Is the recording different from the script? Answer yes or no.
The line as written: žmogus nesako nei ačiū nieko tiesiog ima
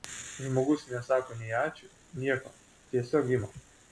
no